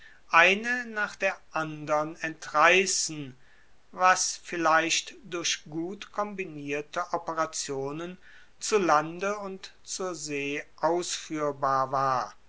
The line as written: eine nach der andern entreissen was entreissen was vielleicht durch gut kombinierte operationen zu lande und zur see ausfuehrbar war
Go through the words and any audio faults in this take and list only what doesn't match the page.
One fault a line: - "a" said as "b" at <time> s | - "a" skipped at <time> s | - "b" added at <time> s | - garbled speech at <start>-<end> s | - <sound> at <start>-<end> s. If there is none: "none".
- "entreissen was" skipped at 4.4 s